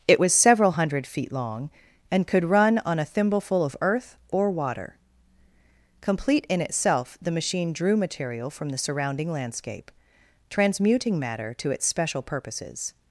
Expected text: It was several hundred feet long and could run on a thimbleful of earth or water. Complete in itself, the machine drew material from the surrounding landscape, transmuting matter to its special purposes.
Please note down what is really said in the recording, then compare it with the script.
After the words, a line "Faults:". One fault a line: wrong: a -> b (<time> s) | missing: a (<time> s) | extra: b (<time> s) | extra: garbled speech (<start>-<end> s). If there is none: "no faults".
It was several hundred feet long and could run on a thimbleful of earth or water. Complete in itself, the machine drew material from the surrounding landscape, transmuting matter to its special purposes.
Faults:
no faults